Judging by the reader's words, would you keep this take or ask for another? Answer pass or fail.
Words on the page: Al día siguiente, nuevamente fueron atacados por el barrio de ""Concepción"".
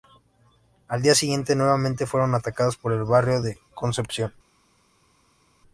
pass